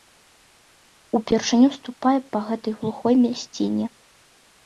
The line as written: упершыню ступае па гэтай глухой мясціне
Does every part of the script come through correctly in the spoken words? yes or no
yes